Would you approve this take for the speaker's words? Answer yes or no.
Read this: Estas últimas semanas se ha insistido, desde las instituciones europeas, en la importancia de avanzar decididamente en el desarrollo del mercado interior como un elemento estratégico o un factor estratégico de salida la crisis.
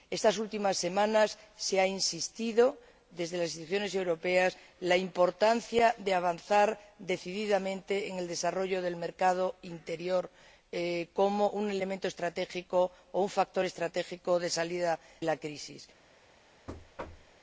yes